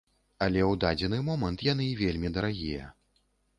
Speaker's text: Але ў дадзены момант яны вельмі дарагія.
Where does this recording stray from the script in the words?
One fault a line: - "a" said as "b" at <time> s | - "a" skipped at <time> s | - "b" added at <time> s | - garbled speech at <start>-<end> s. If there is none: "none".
none